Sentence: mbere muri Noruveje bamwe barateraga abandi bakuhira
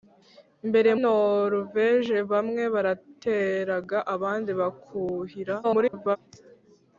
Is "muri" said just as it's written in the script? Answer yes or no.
no